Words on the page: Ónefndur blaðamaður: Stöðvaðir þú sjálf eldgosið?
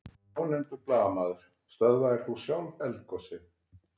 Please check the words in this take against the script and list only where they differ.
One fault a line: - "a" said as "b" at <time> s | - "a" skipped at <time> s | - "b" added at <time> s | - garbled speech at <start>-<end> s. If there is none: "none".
none